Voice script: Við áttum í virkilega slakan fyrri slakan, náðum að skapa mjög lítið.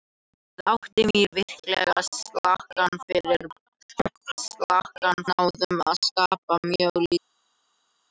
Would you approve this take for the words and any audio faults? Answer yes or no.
yes